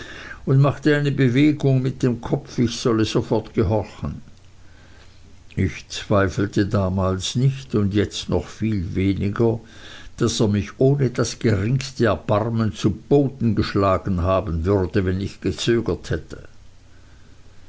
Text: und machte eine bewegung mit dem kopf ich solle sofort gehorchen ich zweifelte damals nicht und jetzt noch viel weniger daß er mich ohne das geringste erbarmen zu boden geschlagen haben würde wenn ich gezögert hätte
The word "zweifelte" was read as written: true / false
true